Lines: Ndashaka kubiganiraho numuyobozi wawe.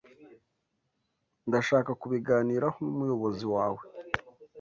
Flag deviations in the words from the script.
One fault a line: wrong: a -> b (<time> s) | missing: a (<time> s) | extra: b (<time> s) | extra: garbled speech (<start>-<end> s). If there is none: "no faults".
no faults